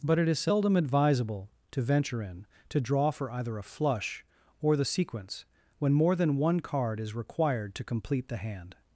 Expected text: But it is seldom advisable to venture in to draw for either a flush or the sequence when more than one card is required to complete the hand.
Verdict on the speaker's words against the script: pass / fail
pass